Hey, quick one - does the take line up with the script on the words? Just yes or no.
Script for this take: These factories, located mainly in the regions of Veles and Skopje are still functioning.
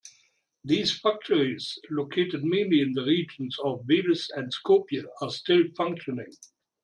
yes